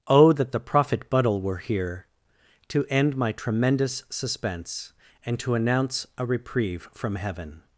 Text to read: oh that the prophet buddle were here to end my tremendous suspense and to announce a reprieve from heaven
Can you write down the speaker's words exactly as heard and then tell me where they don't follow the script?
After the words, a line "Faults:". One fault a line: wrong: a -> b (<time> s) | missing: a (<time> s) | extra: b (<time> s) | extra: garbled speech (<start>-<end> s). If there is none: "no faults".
oh that the prophet buddle were here to end my tremendous suspense and to announce a reprieve from heaven
Faults:
no faults